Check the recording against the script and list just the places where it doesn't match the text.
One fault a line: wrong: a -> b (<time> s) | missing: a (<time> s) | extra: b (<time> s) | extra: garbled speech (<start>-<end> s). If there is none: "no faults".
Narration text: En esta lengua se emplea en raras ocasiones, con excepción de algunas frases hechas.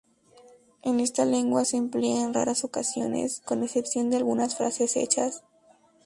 no faults